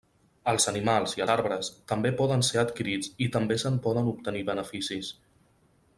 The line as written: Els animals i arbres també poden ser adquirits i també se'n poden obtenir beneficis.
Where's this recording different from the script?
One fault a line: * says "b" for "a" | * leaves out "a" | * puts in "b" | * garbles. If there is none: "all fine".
all fine